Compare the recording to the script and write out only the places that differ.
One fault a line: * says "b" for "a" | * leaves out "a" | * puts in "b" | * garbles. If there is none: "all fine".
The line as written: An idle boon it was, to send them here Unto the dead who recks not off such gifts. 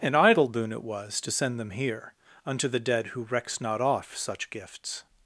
all fine